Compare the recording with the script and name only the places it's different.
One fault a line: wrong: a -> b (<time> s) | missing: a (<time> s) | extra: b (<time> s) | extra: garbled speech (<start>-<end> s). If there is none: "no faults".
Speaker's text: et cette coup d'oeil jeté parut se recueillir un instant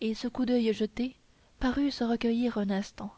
wrong: cette -> ce (0.1 s)